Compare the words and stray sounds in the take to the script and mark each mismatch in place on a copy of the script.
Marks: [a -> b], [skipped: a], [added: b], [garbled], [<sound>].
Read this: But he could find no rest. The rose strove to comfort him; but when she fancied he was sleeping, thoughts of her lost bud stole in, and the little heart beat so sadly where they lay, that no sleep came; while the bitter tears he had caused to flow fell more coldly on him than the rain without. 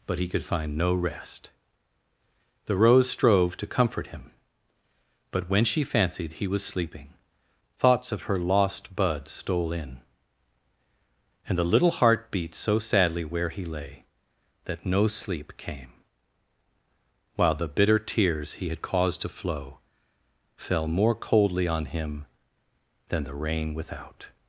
But he could find no rest. The rose strove to comfort him; but when she fancied he was sleeping, thoughts of her lost bud stole in, and the little heart beat so sadly where [they -> he] lay, that no sleep came; while the bitter tears he had caused to flow fell more coldly on him than the rain without.